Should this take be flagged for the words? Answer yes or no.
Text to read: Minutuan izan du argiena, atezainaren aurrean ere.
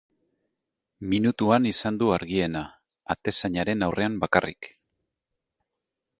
yes